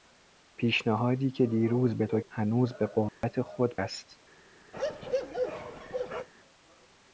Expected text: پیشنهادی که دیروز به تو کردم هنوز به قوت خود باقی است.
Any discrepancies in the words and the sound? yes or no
yes